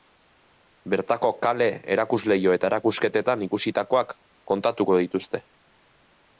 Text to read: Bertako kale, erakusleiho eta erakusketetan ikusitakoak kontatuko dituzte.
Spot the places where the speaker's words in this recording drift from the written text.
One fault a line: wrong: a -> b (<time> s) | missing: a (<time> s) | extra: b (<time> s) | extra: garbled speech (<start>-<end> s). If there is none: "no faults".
no faults